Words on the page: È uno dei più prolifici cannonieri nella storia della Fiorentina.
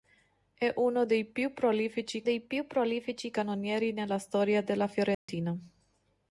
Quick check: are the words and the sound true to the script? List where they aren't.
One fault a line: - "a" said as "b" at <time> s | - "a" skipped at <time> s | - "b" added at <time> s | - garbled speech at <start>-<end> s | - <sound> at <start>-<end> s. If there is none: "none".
- "dei più prolifici" added at 2.2 s
- dropout at 5.1-5.3 s